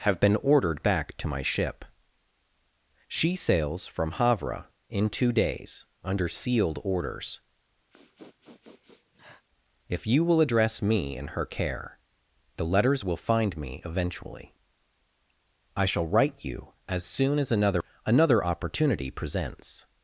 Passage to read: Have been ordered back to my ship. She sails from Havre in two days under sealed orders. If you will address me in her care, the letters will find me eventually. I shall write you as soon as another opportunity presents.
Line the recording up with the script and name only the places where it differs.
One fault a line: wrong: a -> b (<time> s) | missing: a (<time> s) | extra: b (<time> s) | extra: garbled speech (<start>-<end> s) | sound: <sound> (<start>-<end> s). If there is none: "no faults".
sound: sniff (7.9-9.4 s)
extra: another (18.0 s)